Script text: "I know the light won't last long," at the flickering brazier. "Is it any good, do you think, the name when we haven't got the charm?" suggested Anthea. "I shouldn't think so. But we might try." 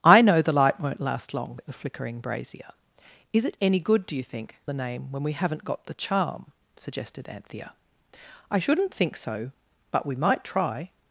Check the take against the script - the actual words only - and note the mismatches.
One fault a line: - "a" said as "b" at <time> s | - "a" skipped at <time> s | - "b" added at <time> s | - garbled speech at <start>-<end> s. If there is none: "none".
none